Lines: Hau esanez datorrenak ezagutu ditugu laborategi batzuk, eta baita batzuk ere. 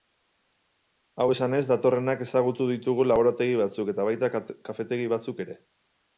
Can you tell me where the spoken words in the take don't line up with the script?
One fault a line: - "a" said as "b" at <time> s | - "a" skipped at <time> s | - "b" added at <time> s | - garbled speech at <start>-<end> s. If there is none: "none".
- "kafetegi" added at 4.7 s